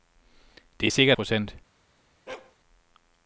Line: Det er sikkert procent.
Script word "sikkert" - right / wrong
right